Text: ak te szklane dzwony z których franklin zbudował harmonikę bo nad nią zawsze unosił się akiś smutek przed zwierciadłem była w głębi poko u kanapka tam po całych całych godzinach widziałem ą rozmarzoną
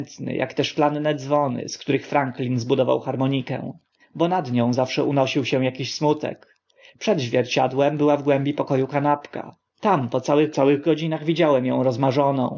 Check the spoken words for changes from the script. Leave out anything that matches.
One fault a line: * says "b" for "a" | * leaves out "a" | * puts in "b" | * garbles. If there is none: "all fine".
all fine